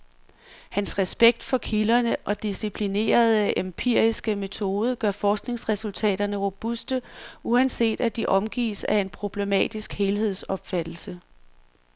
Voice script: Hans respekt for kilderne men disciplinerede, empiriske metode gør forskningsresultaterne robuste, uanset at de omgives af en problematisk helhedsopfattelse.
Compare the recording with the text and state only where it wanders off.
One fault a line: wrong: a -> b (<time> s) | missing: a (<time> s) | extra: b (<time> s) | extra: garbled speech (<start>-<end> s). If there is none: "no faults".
wrong: men -> og (2.2 s)